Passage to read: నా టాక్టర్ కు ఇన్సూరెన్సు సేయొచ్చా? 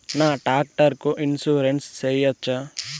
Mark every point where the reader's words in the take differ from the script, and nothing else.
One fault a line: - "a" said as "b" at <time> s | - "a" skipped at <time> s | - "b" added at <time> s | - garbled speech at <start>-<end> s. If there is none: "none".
none